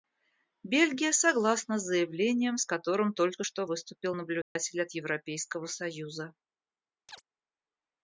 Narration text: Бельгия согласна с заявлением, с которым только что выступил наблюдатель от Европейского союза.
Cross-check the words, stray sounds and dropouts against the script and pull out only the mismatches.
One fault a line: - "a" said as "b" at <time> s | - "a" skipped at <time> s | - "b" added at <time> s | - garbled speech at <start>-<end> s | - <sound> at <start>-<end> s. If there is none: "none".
- dropout at 4.4-4.6 s
- chirp at 7.1-7.2 s